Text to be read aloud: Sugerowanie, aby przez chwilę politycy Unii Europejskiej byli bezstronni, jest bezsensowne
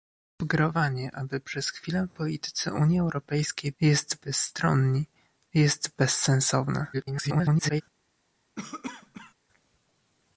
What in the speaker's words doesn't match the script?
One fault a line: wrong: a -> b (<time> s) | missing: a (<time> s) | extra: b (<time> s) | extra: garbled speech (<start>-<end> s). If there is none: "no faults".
wrong: byli -> jest (3.8 s)
extra: garbled speech (6.9-7.8 s)